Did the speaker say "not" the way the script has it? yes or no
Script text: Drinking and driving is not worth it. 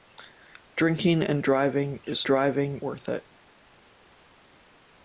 no